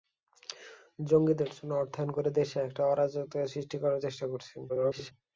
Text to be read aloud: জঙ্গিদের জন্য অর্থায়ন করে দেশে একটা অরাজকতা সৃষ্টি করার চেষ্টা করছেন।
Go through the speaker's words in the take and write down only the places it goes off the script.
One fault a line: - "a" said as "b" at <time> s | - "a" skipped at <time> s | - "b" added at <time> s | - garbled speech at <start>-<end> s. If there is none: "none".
- garbled speech at 4.7-5.1 s